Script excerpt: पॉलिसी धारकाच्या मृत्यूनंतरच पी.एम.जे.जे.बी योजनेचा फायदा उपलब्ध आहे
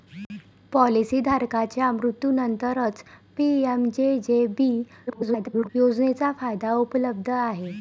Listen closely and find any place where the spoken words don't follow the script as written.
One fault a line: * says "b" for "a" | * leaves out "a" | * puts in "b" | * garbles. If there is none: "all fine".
* garbles